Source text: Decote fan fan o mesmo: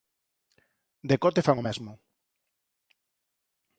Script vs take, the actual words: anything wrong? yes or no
yes